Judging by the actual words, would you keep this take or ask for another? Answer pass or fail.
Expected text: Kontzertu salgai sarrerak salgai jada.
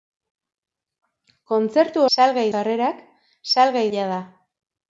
pass